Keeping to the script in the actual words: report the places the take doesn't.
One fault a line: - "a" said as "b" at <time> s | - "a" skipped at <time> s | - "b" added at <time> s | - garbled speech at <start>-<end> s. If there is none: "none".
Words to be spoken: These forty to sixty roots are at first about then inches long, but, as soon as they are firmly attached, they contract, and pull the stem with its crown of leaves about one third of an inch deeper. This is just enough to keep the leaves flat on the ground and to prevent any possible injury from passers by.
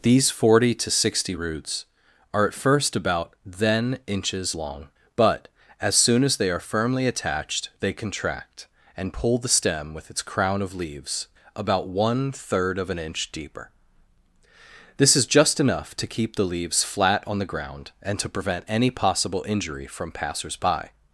none